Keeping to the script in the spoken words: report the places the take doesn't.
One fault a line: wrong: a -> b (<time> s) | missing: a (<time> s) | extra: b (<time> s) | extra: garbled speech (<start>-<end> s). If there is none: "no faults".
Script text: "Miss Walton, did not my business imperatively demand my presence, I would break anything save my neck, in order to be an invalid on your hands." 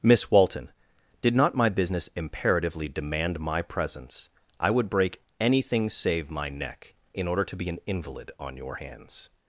no faults